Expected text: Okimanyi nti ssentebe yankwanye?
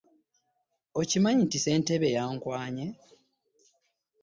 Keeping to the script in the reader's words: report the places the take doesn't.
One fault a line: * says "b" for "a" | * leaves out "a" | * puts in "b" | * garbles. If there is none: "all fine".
all fine